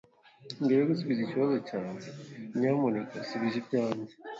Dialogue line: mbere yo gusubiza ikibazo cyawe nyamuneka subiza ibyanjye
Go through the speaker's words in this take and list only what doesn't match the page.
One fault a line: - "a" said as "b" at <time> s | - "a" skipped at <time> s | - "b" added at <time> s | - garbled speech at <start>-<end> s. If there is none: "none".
none